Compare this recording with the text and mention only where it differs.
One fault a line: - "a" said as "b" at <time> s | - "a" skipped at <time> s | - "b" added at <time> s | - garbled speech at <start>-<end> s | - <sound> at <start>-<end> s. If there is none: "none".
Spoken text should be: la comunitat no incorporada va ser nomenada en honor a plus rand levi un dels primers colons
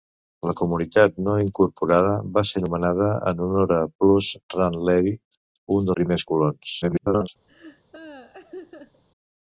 - "dels" skipped at 5.9 s
- garbled speech at 6.8-7.3 s
- laugh at 7.5-9.0 s